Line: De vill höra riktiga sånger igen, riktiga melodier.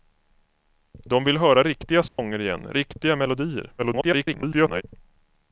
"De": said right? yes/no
yes